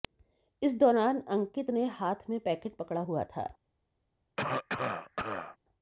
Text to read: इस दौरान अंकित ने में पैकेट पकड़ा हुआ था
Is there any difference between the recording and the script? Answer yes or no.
yes